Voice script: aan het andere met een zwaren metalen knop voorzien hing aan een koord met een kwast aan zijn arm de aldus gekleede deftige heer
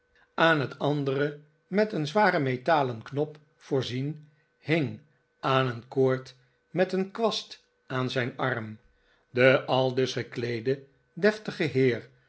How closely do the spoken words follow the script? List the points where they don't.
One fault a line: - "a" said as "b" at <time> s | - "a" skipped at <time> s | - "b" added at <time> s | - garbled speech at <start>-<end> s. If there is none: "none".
none